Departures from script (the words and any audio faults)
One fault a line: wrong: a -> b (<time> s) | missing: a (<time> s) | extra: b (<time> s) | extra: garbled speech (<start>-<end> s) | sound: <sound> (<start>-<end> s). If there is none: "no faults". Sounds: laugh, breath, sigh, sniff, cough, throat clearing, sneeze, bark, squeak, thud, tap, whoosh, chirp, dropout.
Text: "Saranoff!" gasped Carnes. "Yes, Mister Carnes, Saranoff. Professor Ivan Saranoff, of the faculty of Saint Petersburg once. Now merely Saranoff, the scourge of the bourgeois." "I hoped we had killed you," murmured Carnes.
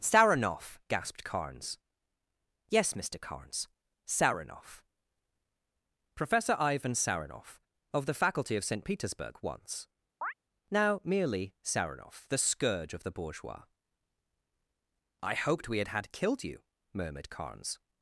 sound: chirp (10.2-10.3 s)
extra: had (15.9 s)